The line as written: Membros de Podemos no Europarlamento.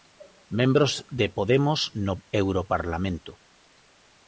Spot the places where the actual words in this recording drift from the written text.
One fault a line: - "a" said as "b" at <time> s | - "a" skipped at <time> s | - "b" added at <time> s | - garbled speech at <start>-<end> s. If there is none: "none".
none